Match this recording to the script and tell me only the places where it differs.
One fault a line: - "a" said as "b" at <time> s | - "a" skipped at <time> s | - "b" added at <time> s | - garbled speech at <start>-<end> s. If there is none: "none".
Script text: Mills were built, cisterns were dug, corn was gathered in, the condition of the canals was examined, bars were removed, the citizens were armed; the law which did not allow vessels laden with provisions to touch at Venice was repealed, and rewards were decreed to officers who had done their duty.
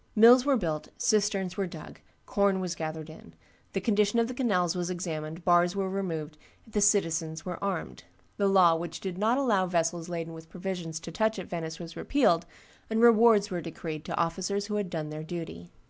none